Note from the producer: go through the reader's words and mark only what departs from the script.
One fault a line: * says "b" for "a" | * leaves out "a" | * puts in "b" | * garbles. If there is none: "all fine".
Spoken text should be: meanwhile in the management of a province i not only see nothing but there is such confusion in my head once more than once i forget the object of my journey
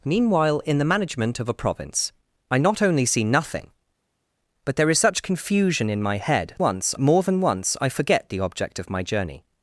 all fine